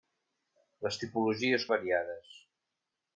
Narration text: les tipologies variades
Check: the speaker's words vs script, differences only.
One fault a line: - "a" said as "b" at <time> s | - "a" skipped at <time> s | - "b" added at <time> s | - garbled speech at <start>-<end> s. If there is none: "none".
none